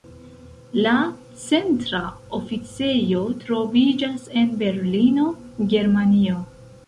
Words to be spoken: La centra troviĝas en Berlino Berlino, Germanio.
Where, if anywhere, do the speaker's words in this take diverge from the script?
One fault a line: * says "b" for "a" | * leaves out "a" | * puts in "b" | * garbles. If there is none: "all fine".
* puts in "oficejo"
* leaves out "Berlino"